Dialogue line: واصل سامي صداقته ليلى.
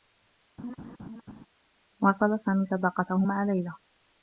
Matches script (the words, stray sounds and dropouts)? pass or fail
fail